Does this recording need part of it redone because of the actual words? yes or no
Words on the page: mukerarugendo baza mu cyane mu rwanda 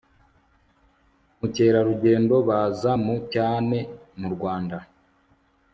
no